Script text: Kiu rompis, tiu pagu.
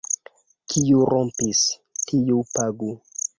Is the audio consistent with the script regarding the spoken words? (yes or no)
yes